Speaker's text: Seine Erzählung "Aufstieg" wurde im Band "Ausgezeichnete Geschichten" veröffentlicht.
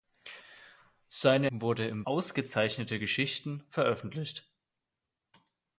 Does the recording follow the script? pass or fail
fail